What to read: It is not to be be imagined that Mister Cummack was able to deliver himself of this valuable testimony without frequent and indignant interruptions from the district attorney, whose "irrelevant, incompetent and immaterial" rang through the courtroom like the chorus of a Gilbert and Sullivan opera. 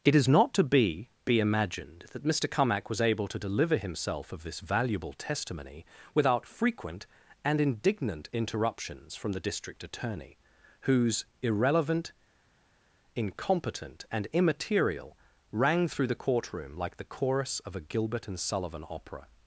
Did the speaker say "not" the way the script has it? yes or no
yes